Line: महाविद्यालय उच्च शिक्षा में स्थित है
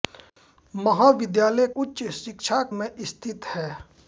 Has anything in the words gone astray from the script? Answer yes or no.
no